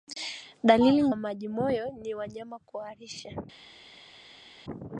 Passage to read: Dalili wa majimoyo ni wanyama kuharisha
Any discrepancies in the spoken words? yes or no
no